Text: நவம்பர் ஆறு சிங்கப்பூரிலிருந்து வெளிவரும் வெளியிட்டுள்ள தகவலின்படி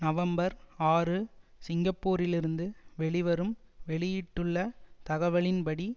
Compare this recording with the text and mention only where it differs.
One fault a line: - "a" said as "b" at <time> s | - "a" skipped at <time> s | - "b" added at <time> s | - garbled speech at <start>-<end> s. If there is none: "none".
none